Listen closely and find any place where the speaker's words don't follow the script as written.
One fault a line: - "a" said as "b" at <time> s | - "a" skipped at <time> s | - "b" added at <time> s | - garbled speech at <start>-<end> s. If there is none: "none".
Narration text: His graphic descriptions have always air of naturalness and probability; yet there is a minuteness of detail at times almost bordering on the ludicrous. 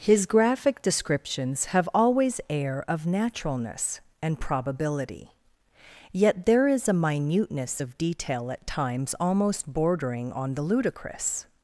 none